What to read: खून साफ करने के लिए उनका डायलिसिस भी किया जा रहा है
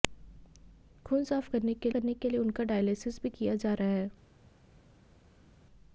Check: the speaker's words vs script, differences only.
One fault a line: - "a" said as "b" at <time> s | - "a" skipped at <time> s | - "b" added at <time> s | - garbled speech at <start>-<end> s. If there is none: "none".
- "करने के" added at 1.9 s